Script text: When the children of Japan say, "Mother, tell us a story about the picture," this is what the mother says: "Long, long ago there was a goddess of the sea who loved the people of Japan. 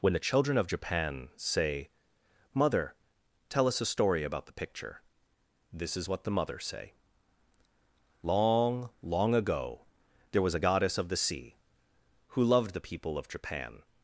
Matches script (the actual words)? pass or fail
fail